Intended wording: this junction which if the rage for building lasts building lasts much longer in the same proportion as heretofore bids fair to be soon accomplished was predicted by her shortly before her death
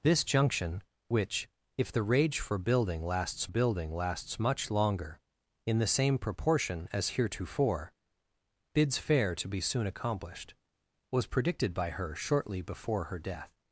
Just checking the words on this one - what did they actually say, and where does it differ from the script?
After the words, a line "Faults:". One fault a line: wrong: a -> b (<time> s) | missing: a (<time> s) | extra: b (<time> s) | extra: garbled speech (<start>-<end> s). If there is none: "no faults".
this junction which if the rage for building lasts building lasts much longer in the same proportion as heretofore bids fair to be soon accomplished was predicted by her shortly before her death
Faults:
no faults